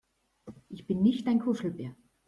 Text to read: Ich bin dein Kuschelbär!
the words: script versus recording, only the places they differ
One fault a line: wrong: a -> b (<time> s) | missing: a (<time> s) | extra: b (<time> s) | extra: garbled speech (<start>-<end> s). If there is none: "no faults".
extra: nicht (1.0 s)